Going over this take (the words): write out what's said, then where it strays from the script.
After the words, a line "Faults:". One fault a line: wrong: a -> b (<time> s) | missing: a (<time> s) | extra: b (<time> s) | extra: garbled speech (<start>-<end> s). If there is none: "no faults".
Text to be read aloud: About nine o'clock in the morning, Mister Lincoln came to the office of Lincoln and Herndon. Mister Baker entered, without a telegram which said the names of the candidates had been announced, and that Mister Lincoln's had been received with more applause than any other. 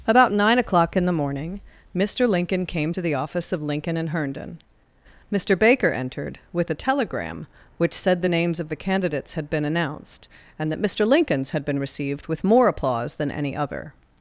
About nine o'clock in the morning, Mister Lincoln came to the office of Lincoln and Herndon. Mister Baker entered, with a telegram which said the names of the candidates had been announced, and that Mister Lincoln's had been received with more applause than any other.
Faults:
wrong: without -> with (6.5 s)